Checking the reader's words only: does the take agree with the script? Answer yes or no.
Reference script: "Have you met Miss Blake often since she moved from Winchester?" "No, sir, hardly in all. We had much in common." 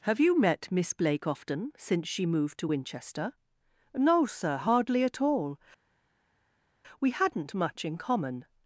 no